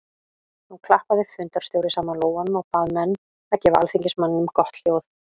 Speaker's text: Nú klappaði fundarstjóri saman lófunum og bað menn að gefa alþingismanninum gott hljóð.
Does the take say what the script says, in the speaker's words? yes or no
yes